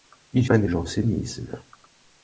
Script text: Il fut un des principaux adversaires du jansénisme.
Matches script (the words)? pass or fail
fail